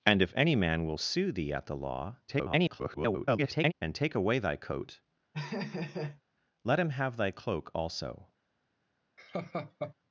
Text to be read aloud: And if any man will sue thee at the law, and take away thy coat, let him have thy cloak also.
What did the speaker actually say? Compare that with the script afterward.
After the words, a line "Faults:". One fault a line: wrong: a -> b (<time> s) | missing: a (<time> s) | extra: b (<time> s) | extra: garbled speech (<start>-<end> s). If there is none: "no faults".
And if any man will sue thee at the law, [garbled] and take away thy coat, let him have thy cloak also.
Faults:
extra: garbled speech (2.3-3.7 s)